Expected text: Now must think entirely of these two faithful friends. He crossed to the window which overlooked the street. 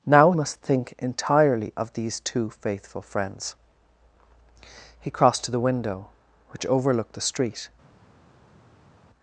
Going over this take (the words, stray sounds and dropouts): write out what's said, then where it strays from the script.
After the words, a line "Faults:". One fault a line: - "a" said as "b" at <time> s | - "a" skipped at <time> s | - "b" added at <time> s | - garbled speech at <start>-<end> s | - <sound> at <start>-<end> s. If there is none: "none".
Now must think entirely of these two faithful friends. He crossed to the window which overlooked the street.
Faults:
none